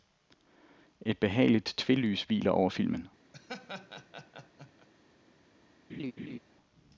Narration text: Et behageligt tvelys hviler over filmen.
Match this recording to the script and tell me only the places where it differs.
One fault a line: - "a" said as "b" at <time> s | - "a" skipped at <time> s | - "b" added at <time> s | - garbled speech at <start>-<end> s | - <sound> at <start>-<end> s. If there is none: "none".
- laugh at 3.3-4.9 s
- laugh at 5.9-6.4 s